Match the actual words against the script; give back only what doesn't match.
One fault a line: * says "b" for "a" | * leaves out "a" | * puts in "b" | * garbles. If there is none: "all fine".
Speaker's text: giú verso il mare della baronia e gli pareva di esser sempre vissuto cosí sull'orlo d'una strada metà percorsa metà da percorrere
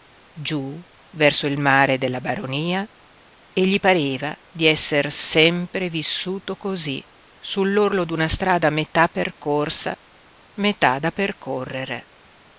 all fine